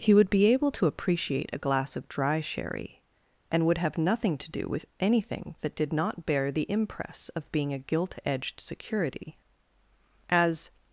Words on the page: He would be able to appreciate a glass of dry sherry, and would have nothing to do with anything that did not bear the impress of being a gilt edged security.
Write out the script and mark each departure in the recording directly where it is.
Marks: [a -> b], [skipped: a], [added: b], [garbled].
He would be able to appreciate a glass of dry sherry, and would have nothing to do with anything that did not bear the impress of being a gilt edged security. [added: As]